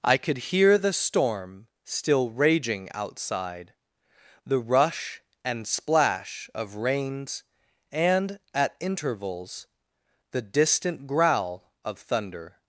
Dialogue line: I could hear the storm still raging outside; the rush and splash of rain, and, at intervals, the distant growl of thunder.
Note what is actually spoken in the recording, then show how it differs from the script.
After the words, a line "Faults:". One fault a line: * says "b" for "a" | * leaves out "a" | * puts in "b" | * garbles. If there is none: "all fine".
I could hear the storm still raging outside; the rush and splash of rains, and, at intervals, the distant growl of thunder.
Faults:
* says "rains" for "rain"